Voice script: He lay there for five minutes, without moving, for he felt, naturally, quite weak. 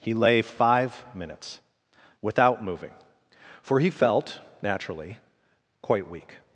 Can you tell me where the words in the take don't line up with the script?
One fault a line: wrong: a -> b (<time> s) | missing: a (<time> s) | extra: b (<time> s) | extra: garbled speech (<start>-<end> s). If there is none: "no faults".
missing: there for (0.4 s)